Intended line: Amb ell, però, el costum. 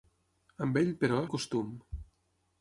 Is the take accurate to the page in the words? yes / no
yes